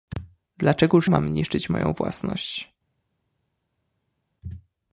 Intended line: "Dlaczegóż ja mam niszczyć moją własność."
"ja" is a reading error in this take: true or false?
true